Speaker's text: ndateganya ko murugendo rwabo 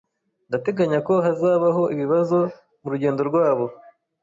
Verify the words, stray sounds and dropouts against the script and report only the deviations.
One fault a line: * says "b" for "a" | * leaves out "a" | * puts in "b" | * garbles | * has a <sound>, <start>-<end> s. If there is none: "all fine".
* puts in "hazabaho ibibazo"